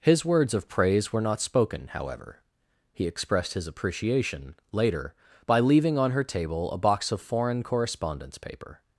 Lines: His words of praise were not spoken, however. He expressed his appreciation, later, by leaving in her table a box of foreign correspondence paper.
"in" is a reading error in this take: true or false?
true